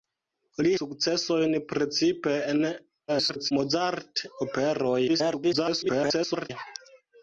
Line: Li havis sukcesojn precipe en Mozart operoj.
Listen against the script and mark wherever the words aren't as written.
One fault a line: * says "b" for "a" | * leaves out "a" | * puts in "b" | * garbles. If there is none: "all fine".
* leaves out "havis"
* garbles
* garbles